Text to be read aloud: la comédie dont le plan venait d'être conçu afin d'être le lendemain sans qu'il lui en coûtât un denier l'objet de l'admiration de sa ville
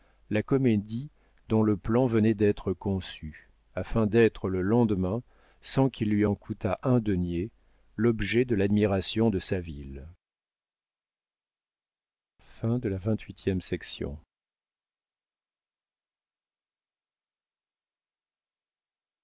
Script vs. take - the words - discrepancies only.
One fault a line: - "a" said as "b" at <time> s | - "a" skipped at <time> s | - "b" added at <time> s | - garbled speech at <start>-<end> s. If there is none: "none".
none